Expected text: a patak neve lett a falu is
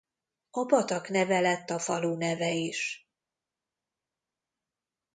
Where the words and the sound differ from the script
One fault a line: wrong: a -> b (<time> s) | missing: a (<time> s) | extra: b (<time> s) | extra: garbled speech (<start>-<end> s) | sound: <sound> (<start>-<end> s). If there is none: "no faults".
extra: neve (2.2 s)